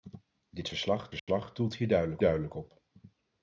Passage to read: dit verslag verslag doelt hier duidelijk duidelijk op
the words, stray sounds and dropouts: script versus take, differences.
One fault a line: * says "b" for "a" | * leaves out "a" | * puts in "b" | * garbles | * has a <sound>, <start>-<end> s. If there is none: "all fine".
* has a dropout, 1.2-1.3 s